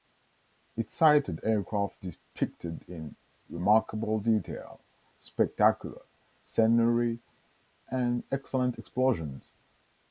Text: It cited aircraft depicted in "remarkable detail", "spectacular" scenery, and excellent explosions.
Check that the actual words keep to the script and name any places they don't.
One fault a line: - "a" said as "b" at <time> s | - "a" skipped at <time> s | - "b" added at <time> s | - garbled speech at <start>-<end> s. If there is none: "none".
none